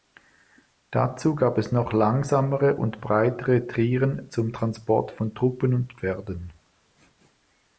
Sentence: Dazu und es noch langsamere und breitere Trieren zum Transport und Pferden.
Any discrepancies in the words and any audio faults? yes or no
yes